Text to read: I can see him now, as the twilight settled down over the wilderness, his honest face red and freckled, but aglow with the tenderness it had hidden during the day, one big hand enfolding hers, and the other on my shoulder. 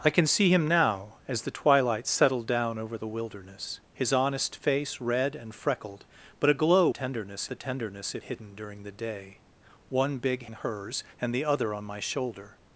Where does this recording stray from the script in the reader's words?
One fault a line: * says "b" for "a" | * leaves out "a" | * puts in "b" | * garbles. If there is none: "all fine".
* says "tenderness" for "with"
* leaves out "had"
* leaves out "hand enfolding"